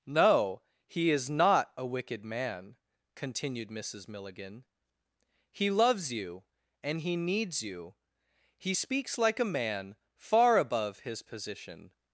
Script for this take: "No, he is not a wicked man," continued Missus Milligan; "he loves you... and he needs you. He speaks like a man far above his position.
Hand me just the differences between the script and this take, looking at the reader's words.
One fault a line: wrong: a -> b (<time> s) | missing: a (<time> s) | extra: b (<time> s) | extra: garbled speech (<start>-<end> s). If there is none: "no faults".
no faults